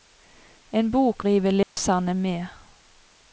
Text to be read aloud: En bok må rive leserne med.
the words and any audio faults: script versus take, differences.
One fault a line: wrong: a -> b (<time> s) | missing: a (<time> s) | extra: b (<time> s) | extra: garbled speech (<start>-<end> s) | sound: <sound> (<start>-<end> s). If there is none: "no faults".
missing: må (1.2 s)
sound: dropout (1.6-1.8 s)